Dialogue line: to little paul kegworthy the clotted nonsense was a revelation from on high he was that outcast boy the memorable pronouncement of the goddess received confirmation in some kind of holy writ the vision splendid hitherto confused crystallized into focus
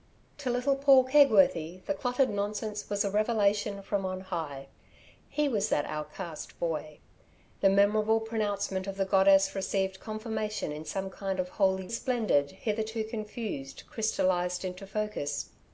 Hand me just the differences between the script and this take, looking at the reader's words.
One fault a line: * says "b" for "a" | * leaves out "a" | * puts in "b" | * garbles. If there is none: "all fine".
* leaves out "writ the vision"